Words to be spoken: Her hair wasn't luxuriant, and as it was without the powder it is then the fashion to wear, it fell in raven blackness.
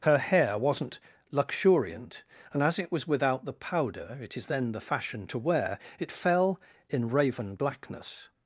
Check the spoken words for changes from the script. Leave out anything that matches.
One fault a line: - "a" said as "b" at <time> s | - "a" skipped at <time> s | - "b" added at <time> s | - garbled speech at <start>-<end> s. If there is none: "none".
none